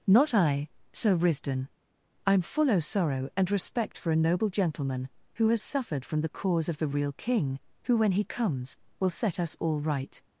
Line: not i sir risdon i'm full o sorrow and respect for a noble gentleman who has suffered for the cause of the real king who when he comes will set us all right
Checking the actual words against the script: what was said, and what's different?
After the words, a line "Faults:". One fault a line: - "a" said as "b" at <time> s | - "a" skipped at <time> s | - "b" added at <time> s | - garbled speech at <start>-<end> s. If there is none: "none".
not i sir risdon i'm full o sorrow and respect for a noble gentleman who has suffered from the cause of the real king who when he comes will set us all right
Faults:
- "for" said as "from" at 6.0 s